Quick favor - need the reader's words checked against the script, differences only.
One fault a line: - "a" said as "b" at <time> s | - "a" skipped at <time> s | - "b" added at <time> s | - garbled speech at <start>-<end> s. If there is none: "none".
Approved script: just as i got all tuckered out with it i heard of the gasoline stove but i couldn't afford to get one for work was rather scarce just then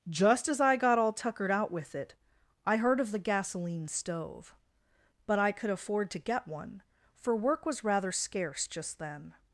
- "couldn't" said as "could" at 5.5 s